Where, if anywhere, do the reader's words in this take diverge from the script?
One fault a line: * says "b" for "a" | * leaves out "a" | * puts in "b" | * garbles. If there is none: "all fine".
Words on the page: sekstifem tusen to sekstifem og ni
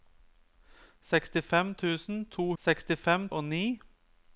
all fine